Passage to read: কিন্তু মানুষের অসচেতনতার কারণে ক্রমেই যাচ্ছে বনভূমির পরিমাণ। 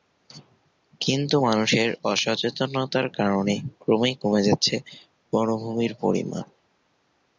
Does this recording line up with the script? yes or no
no